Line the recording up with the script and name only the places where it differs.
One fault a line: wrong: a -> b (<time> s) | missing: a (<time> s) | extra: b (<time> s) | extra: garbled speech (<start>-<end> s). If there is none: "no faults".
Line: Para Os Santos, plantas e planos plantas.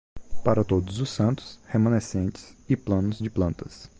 extra: Todos (0.6 s)
wrong: plantas -> remanescentes (1.7 s)
extra: de (3.2 s)